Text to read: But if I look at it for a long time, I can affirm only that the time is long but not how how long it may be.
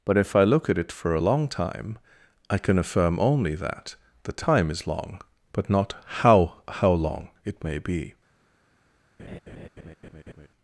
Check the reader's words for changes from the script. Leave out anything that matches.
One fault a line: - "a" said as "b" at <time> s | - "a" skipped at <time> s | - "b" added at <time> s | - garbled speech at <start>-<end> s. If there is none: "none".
none